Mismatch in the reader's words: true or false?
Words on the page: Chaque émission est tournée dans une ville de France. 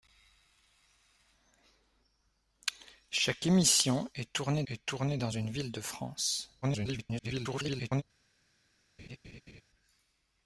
true